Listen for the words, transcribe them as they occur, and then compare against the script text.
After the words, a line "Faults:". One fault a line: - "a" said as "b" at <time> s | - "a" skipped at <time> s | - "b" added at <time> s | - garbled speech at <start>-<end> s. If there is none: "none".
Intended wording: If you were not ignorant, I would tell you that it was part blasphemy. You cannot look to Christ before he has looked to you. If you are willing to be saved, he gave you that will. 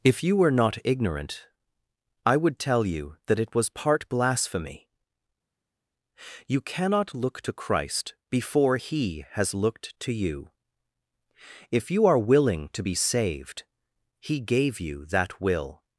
If you were not ignorant, I would tell you that it was part blasphemy. You cannot look to Christ before he has looked to you. If you are willing to be saved, he gave you that will.
Faults:
none